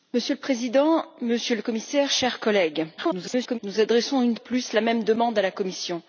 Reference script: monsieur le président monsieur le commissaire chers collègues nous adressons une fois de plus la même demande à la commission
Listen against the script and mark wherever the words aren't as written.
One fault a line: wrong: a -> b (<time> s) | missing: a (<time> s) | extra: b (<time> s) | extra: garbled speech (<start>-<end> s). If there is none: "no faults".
extra: garbled speech (3.0-3.6 s)
missing: fois (4.4 s)